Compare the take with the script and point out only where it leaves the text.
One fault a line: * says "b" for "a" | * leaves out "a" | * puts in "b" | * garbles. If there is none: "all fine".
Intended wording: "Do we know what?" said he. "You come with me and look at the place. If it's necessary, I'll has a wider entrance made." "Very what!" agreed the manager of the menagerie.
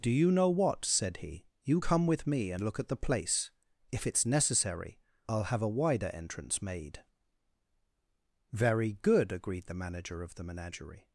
* says "you" for "we"
* says "have" for "has"
* says "good" for "what"